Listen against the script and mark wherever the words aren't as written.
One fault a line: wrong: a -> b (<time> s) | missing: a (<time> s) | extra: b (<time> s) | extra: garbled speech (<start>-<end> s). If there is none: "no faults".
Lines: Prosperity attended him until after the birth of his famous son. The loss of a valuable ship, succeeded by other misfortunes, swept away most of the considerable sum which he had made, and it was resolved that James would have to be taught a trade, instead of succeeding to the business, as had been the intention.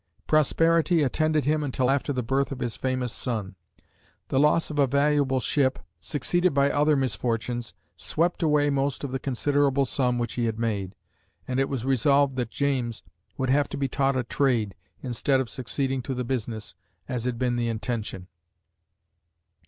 no faults